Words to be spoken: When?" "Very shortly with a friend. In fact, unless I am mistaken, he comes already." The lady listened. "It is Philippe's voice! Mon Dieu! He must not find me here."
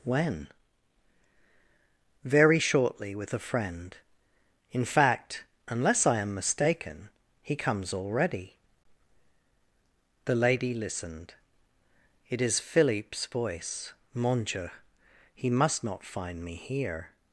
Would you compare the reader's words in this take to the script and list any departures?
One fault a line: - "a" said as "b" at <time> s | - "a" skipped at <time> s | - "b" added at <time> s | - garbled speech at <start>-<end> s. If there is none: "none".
none